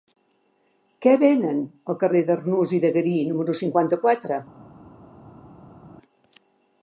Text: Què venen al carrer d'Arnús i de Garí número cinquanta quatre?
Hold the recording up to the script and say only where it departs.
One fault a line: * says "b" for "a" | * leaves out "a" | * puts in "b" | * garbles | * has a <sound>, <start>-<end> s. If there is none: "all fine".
all fine